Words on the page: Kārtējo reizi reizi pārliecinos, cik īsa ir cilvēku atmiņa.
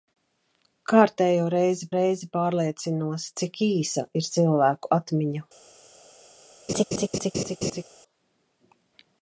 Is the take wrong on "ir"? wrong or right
right